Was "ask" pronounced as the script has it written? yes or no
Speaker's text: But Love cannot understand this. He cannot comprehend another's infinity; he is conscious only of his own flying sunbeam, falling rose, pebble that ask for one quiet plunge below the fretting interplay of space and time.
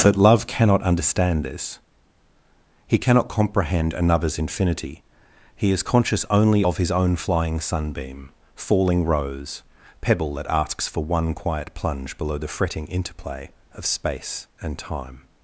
no